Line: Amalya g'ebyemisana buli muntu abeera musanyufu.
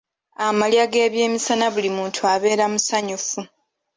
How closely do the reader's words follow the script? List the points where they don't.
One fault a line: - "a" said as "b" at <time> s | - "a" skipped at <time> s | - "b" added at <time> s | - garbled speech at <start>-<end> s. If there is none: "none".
none